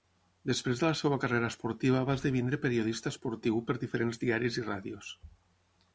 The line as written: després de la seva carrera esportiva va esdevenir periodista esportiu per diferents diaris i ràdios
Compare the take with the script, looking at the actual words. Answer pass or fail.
pass